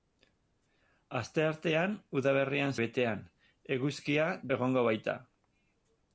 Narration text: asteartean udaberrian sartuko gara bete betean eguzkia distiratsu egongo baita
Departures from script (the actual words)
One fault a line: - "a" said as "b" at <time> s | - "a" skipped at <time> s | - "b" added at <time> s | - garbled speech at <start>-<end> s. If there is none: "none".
- "sartuko gara bete" skipped at 2.7 s
- "distiratsu" skipped at 4.3 s